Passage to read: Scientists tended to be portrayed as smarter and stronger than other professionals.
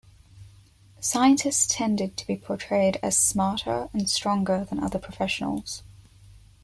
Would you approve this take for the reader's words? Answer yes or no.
yes